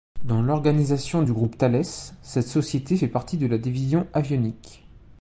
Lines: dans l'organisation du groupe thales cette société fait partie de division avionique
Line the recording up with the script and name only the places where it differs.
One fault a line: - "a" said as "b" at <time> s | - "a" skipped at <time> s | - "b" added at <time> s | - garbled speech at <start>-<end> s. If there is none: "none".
- "la" added at 3.4 s